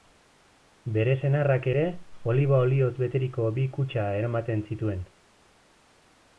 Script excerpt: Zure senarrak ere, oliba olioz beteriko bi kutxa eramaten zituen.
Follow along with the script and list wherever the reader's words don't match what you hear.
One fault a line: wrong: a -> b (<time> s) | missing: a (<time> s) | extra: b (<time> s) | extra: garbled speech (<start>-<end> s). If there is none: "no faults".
wrong: Zure -> Bere (0.9 s)